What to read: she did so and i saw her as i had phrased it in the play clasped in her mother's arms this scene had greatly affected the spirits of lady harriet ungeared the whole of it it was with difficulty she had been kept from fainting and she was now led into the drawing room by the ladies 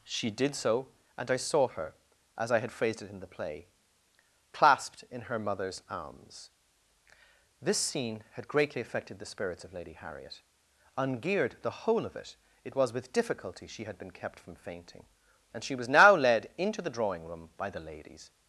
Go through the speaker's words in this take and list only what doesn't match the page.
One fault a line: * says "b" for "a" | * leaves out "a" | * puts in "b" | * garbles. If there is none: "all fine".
all fine